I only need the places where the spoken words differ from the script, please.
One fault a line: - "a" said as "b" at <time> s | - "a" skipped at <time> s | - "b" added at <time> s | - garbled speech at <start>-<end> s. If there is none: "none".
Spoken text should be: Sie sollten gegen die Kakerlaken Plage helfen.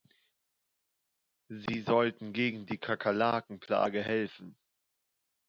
none